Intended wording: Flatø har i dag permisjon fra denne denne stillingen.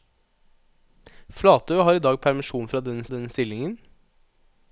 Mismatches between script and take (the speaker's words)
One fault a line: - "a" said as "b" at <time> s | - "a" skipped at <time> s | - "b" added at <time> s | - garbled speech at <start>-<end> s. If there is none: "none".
none